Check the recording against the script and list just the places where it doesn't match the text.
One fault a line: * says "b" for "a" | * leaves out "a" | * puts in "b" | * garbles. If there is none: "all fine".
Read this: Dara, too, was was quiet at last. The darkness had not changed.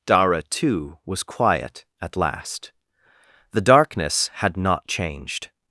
* leaves out "was"